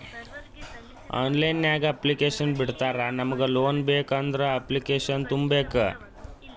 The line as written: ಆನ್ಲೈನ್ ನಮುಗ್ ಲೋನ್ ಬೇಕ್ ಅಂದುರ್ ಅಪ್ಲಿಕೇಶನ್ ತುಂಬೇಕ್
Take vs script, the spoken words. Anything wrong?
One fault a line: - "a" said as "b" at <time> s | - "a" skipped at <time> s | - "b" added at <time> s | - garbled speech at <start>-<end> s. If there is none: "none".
- "ನಾಗ್ ಅಪ್ಲಿಕೇಶನ್ ಬಿಡ್ತಾರಾ" added at 1.6 s